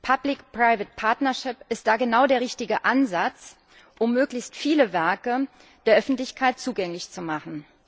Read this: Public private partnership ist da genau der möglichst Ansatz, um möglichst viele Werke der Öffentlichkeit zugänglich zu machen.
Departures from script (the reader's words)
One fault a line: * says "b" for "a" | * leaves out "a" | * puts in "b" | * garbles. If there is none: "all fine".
* says "richtige" for "möglichst"